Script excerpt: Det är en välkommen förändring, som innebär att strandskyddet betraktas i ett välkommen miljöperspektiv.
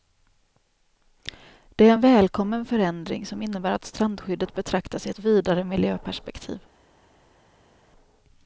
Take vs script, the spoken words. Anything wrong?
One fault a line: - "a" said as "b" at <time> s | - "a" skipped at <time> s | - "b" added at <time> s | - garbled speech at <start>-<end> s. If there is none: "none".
- "välkommen" said as "vidare" at 5.2 s